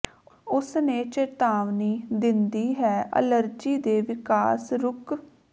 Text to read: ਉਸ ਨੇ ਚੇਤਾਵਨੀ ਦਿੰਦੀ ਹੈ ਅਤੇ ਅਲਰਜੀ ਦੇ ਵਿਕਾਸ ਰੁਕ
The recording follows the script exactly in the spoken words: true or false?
false